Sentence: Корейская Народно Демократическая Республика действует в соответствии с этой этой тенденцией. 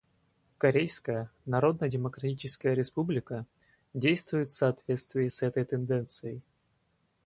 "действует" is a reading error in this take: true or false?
false